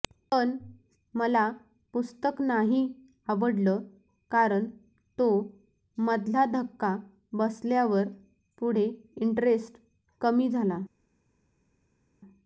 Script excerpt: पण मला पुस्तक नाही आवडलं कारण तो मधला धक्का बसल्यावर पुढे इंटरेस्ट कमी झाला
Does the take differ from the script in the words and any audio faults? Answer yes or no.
no